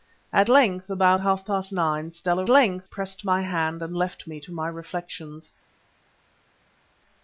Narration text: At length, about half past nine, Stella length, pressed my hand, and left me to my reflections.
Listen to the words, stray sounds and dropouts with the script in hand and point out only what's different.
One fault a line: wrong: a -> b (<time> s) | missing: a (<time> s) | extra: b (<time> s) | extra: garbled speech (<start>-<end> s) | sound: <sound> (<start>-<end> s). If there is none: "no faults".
no faults